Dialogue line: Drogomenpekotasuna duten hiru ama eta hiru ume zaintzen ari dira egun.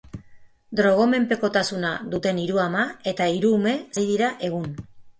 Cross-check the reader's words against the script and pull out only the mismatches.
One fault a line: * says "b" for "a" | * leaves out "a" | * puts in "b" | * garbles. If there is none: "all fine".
* leaves out "zaintzen"